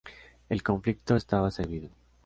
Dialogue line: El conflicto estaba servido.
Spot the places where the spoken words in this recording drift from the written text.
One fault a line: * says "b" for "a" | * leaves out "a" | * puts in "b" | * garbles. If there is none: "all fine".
all fine